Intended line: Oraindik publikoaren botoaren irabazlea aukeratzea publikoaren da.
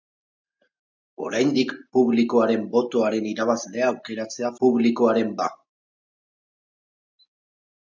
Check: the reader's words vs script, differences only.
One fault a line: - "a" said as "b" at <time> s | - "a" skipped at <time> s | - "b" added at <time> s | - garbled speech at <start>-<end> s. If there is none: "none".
none